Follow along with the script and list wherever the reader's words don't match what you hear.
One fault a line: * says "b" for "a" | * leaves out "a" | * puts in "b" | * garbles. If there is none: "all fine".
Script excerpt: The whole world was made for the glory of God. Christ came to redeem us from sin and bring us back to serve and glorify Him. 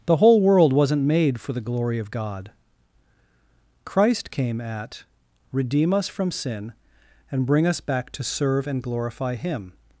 * says "wasn't" for "was"
* says "at" for "to"